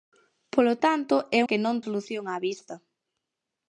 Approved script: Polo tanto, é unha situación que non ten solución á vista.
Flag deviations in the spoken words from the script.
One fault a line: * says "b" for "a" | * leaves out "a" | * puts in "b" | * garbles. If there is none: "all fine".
* leaves out "unha situación"
* leaves out "ten"